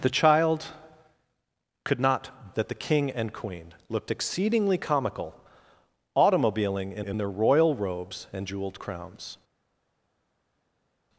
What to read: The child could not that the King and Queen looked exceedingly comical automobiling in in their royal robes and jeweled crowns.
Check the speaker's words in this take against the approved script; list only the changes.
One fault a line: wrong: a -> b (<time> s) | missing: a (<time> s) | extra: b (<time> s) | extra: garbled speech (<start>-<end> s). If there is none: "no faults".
no faults